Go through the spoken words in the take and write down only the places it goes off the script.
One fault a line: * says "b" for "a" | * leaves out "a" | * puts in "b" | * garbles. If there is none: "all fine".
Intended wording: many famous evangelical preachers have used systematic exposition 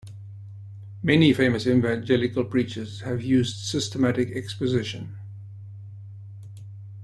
all fine